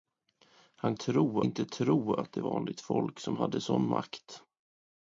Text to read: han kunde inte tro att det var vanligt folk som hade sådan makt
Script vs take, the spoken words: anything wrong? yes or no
yes